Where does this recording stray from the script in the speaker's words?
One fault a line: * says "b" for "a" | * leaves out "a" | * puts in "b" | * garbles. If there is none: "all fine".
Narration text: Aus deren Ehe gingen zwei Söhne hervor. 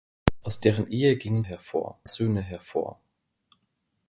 * says "hervor" for "zwei"